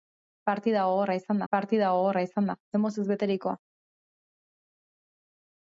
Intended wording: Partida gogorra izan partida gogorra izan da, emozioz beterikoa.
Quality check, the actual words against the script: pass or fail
pass